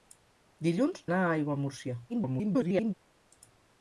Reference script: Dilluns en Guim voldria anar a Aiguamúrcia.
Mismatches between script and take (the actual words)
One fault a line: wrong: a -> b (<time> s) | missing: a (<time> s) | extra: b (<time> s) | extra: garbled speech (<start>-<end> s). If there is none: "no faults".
missing: en Guim voldria (1.0 s)
extra: garbled speech (2.1-2.9 s)